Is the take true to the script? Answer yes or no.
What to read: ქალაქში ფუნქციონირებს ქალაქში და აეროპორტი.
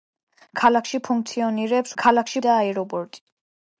yes